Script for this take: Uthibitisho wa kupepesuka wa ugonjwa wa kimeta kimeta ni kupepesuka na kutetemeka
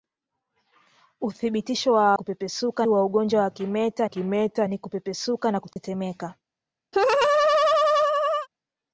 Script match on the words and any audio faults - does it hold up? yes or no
no